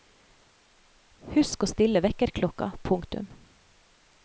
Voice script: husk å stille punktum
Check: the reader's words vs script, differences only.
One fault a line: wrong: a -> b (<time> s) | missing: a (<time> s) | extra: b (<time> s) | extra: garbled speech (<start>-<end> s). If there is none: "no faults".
extra: vekkerklokka (2.0 s)